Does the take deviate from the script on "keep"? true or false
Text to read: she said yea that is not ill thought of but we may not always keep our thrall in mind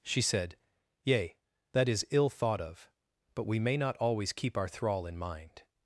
false